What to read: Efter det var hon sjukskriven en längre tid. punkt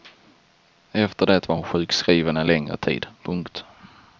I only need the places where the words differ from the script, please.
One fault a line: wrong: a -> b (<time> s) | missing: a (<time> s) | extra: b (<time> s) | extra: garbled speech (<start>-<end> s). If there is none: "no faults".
no faults